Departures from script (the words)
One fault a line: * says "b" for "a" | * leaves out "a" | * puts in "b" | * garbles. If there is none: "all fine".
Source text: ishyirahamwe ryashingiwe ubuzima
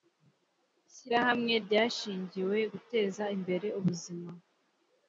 * puts in "guteza imbere"